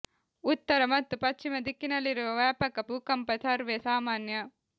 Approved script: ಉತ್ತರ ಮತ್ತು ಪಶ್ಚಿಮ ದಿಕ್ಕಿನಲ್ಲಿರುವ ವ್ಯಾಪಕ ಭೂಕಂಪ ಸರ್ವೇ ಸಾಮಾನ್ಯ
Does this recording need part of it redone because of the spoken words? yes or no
no